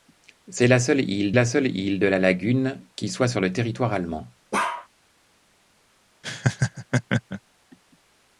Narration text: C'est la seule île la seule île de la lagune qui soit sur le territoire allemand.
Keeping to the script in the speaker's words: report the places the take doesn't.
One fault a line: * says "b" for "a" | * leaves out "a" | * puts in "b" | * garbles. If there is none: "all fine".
all fine